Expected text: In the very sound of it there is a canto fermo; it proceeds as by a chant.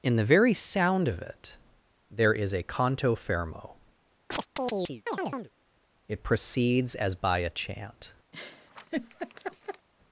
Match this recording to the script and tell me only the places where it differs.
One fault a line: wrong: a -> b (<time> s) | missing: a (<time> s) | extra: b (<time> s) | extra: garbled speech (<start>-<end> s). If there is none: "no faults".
no faults